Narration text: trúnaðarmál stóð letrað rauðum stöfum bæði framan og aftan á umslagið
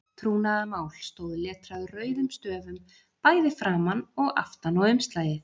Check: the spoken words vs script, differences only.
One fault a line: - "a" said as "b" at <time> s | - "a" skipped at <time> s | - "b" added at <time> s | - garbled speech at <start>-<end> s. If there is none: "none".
none